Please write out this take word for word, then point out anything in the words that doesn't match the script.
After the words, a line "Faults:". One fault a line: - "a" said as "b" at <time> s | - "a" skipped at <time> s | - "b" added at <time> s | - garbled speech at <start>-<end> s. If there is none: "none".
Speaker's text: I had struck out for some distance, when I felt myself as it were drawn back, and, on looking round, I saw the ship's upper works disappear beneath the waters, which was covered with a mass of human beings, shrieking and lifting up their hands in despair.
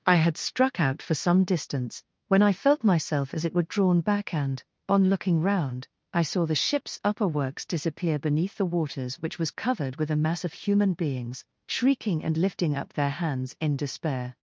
I had struck out for some distance, when I felt myself as it were drawn back, and, on looking round, I saw the ship's upper works disappear beneath the waters, which was covered with a mass of human beings, shrieking and lifting up their hands in despair.
Faults:
none